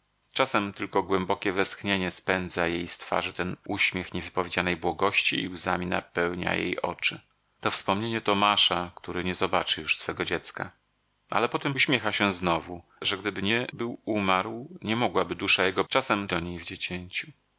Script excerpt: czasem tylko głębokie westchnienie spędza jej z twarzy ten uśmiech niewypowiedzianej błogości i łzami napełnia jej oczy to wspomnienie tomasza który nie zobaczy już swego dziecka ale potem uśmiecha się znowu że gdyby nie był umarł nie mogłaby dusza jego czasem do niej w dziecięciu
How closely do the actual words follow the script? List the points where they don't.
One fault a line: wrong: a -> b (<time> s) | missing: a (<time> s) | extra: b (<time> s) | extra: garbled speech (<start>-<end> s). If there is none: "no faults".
no faults